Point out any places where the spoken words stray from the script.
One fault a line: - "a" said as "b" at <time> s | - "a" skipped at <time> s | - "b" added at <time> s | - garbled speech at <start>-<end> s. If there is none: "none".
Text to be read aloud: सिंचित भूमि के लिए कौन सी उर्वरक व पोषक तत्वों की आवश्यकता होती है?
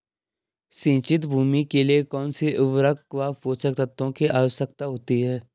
none